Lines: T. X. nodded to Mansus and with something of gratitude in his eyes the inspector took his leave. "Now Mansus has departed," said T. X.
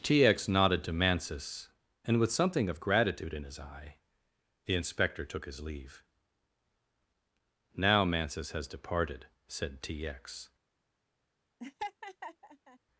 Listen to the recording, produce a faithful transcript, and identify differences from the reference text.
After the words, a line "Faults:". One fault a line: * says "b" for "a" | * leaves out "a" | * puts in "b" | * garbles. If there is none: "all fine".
T. X. nodded to Mansus and with something of gratitude in his eye the inspector took his leave. "Now Mansus has departed," said T. X.
Faults:
* says "eye" for "eyes"